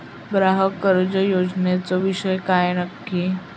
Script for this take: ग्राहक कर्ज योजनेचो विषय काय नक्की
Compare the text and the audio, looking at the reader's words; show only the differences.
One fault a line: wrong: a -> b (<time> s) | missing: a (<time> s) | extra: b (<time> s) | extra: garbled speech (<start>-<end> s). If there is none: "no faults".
no faults